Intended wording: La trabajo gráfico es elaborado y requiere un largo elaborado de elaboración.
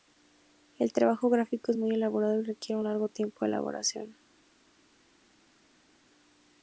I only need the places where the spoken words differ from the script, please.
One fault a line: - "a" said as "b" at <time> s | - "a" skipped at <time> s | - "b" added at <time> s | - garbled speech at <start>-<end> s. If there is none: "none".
- "La" said as "El" at 0.8 s
- "muy" added at 1.8 s
- "elaborado" said as "tiempo" at 3.1 s